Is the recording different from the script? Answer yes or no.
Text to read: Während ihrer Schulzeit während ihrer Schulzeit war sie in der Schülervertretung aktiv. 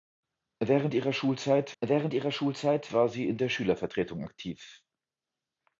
no